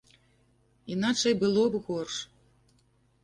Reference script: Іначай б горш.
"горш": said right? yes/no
yes